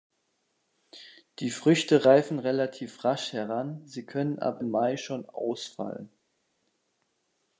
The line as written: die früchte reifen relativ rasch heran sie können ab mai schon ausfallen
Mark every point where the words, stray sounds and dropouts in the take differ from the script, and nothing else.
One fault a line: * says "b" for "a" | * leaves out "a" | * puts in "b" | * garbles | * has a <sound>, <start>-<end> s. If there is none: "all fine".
all fine